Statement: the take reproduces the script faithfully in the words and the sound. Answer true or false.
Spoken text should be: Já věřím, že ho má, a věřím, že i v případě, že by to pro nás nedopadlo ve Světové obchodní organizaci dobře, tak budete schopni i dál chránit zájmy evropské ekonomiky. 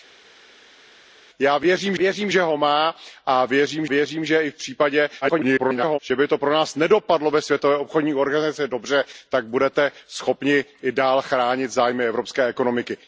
false